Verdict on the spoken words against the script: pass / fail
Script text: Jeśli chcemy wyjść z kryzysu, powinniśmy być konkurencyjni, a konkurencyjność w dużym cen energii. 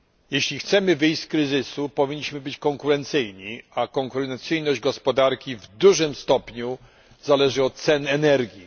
fail